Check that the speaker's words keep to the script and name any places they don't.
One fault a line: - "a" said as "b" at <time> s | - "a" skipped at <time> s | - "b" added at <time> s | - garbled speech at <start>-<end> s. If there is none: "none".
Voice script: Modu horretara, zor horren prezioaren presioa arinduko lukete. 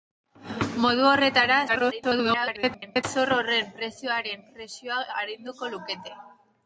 - garbled speech at 1.7-3.0 s